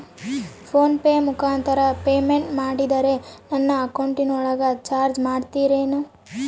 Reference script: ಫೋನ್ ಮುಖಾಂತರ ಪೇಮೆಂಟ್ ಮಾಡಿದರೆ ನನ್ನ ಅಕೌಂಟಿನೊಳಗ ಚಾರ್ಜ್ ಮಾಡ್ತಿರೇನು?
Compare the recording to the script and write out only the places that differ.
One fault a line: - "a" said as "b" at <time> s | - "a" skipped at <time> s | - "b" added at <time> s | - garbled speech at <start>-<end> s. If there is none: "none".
- "ಪೆ" added at 1.0 s